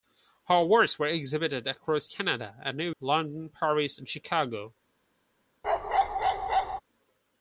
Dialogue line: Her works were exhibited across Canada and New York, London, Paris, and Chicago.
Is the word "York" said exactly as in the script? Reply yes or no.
no